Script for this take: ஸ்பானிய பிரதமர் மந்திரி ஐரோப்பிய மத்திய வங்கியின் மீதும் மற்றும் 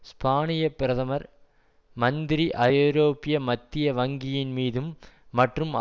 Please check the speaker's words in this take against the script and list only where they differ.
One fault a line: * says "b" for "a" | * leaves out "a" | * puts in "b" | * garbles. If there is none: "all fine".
all fine